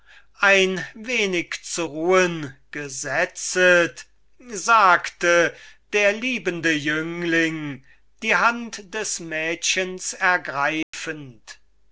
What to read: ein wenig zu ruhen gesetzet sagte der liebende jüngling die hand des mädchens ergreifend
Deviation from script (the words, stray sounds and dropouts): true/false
true